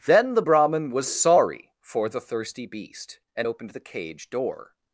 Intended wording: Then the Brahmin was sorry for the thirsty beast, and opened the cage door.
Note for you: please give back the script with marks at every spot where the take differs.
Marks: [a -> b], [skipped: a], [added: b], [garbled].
Then the Brahmin was sorry for the thirsty beast, and opened the cage door.